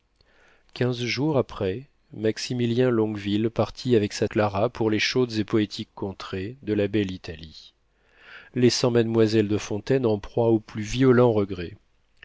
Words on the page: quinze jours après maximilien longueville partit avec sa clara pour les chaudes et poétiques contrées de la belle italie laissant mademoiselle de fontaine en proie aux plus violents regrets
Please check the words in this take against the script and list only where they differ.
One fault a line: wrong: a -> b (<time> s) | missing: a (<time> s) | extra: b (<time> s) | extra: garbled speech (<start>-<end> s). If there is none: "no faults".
no faults